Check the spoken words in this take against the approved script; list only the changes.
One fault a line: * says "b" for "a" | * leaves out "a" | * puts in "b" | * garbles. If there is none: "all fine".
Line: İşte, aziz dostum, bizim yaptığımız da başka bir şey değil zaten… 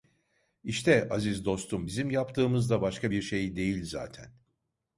all fine